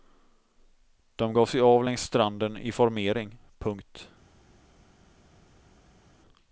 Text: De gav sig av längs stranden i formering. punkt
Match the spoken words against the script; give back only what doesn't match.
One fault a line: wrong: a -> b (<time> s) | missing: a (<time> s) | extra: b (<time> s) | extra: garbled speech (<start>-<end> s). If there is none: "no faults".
no faults